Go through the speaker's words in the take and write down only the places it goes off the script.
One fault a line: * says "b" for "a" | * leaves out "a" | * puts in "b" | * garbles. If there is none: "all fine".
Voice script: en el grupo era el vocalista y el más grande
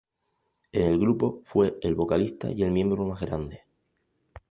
* says "fue" for "era"
* puts in "miembro"